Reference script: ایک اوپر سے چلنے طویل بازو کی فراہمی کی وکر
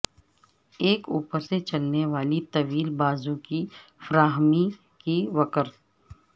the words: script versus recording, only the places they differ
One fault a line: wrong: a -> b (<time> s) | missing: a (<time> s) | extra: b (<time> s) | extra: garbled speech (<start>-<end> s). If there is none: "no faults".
extra: والی (2.1 s)